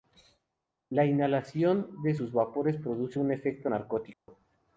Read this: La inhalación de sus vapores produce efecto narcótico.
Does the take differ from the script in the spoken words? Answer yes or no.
yes